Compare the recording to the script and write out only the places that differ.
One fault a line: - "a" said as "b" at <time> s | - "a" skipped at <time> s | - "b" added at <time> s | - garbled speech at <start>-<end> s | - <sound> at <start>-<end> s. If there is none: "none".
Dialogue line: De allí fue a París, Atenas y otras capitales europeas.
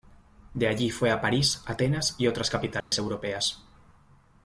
- dropout at 2.8-2.9 s